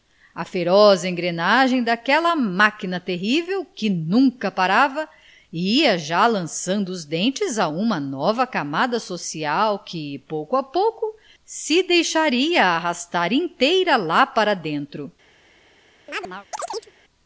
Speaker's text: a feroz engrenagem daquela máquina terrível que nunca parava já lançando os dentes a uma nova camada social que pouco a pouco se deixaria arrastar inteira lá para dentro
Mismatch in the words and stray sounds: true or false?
true